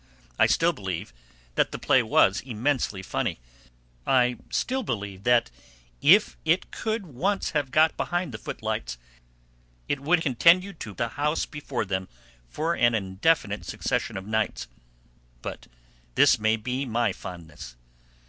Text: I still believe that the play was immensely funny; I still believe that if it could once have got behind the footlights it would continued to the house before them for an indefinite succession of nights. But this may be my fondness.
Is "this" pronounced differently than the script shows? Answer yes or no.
no